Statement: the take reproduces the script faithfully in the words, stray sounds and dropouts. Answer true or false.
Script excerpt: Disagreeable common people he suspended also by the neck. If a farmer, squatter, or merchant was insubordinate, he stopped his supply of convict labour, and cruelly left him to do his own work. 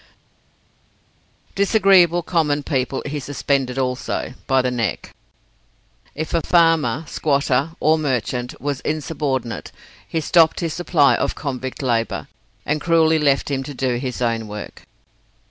true